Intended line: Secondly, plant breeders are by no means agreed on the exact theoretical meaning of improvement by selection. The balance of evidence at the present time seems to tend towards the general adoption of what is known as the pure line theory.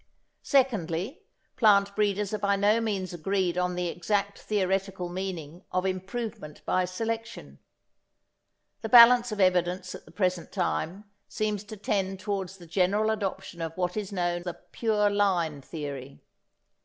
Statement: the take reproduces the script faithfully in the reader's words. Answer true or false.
false